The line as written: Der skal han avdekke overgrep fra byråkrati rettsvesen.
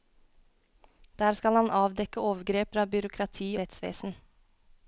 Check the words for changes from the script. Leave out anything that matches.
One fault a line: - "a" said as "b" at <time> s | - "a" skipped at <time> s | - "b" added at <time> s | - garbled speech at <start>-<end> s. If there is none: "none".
none